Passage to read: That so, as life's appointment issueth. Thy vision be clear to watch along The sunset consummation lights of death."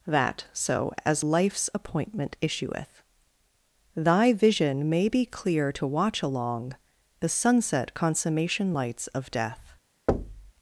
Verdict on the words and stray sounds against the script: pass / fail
fail